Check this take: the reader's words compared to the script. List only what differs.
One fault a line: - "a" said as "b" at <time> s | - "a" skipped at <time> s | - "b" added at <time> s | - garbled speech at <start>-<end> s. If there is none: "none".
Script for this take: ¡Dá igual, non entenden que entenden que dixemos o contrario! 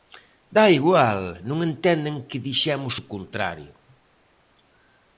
- "entenden que" skipped at 2.4 s